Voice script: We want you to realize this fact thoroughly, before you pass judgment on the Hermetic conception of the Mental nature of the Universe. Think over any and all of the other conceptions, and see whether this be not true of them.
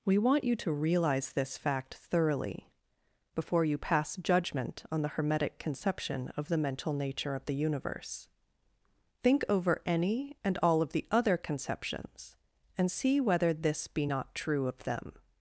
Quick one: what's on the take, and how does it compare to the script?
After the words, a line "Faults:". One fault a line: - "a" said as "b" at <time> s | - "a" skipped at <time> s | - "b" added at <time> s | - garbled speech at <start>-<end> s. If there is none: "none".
We want you to realize this fact thoroughly, before you pass judgment on the Hermetic conception of the Mental nature of the Universe. Think over any and all of the other conceptions, and see whether this be not true of them.
Faults:
none